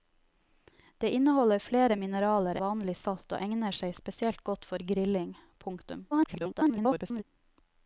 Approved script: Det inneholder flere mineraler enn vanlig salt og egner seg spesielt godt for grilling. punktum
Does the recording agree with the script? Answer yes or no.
no